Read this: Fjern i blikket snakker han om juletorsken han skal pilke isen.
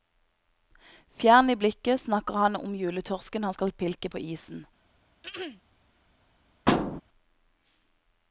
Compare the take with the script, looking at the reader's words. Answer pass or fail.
fail